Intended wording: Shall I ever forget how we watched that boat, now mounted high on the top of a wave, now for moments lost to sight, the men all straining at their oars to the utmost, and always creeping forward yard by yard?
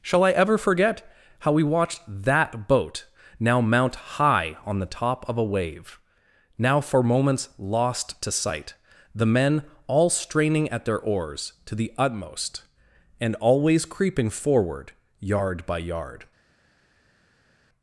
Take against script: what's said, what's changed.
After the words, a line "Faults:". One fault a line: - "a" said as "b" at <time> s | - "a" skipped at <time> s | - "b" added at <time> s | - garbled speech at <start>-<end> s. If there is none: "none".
Shall I ever forget how we watched that boat, now mount high on the top of a wave, now for moments lost to sight, the men all straining at their oars to the utmost, and always creeping forward yard by yard?
Faults:
- "mounted" said as "mount" at 3.6 s